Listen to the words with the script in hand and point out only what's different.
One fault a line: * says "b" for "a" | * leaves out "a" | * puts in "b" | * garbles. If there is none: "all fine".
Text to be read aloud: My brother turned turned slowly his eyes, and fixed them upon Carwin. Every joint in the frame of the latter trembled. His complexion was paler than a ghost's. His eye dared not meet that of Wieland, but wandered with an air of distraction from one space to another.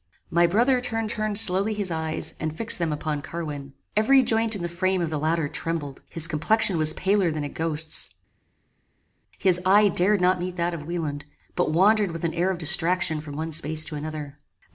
all fine